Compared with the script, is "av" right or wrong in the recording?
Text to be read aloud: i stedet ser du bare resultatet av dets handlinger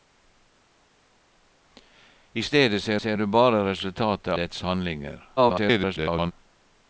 wrong